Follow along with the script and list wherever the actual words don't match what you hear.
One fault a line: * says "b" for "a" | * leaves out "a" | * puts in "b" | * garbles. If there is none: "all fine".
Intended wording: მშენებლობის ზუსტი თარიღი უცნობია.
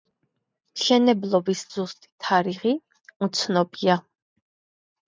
all fine